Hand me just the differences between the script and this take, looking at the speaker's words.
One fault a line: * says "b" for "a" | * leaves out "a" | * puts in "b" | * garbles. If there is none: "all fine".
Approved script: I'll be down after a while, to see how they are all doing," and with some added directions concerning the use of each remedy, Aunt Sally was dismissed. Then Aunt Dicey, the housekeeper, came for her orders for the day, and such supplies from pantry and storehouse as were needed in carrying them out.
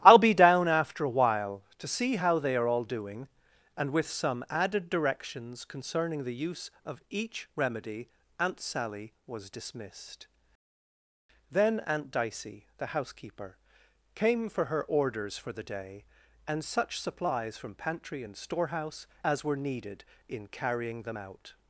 all fine